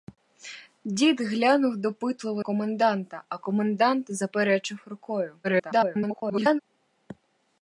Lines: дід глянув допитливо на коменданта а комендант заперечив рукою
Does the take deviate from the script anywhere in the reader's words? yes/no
yes